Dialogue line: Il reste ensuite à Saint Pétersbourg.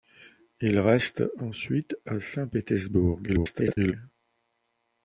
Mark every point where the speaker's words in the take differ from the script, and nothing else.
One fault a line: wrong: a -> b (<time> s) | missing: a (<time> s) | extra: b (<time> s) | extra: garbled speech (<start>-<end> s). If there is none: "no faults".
extra: garbled speech (3.3-3.9 s)